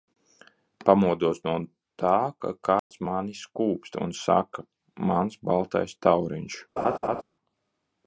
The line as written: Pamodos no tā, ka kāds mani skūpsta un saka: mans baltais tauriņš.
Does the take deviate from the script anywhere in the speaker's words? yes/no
no